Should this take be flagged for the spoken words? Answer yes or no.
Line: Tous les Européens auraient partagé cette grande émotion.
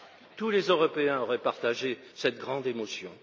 no